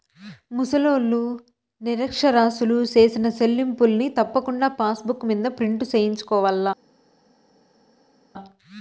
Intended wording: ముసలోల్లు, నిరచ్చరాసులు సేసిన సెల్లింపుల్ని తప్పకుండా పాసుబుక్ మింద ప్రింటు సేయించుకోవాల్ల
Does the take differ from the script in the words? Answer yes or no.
no